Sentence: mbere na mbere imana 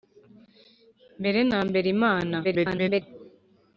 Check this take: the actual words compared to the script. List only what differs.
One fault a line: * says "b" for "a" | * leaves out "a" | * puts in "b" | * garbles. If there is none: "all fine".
* garbles